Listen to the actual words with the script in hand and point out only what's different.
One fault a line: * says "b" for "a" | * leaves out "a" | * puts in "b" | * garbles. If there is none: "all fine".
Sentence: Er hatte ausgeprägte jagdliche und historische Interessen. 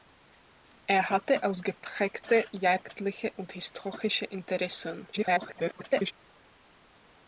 * garbles